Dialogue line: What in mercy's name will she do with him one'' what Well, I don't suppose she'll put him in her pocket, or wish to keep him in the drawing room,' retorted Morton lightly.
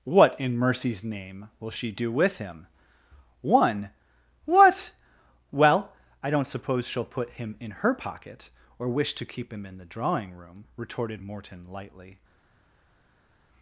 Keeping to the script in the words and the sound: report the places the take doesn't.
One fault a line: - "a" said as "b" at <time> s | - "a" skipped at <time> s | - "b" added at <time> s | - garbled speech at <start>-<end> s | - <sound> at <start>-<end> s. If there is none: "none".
none